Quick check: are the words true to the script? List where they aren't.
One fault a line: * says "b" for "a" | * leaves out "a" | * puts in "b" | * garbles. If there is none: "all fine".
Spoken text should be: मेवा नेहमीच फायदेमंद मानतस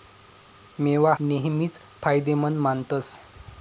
all fine